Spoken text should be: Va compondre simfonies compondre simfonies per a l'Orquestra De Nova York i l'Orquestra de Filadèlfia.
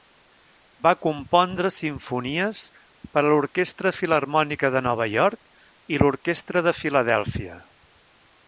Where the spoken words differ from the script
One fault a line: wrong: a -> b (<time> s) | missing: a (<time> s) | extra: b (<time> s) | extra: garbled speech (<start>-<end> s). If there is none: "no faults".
missing: compondre simfonies (2.6 s)
extra: Filharmònica (4.0 s)